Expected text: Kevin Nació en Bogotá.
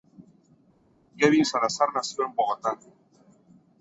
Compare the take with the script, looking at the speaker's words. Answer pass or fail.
fail